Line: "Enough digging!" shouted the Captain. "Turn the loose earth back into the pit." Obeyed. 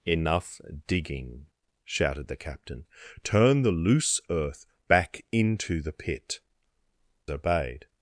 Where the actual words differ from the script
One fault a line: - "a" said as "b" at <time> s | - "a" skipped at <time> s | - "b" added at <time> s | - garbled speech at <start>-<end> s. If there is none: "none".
none